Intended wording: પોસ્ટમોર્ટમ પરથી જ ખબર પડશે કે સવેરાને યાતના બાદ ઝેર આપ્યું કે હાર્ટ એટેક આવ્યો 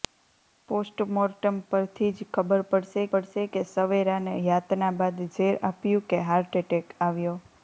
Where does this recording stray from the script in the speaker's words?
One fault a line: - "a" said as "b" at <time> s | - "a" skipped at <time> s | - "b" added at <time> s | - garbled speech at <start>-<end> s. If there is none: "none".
- "પડશે" added at 3.1 s